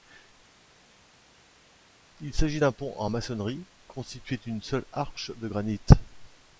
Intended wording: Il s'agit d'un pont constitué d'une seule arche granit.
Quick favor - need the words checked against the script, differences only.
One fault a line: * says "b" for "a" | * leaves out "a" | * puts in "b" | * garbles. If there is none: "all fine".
* puts in "en maçonnerie"
* puts in "de"